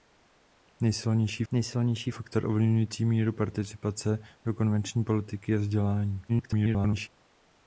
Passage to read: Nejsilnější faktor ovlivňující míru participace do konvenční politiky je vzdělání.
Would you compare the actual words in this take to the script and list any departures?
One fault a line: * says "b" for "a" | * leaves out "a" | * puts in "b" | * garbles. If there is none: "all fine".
* puts in "nejsilnější"
* garbles